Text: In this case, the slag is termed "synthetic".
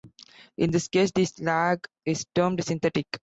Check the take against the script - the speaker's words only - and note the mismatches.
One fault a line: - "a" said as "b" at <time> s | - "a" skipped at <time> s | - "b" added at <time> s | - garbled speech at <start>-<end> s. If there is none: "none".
none